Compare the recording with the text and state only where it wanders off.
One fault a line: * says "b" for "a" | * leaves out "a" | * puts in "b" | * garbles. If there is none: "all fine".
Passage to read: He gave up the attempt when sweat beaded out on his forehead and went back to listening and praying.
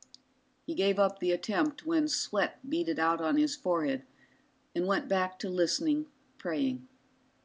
* leaves out "and"